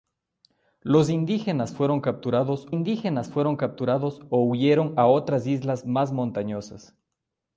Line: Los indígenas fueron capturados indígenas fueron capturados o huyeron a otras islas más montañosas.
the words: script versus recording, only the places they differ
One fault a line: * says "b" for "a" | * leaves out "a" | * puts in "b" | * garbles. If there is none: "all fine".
all fine